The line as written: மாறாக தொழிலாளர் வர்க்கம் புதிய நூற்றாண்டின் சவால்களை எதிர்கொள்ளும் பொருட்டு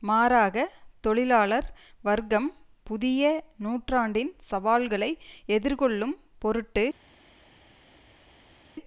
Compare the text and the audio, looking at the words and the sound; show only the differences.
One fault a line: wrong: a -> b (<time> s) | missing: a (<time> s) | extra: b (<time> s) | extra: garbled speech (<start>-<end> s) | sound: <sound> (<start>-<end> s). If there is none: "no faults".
no faults